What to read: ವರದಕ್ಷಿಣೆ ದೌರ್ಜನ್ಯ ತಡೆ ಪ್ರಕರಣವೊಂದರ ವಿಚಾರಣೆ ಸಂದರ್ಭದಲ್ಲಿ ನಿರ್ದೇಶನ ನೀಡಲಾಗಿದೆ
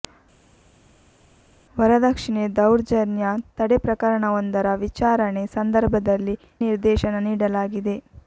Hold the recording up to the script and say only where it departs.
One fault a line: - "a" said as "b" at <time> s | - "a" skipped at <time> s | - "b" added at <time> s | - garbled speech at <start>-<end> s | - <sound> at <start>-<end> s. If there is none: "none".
none